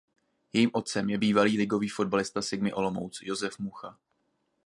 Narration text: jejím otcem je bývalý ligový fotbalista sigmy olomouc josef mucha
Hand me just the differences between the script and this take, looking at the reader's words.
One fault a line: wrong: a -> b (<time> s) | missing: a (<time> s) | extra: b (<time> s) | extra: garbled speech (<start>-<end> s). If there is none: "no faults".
no faults